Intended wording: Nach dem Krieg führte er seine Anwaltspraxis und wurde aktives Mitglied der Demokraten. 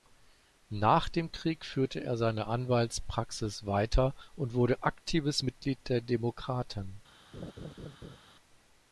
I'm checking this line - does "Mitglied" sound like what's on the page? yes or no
yes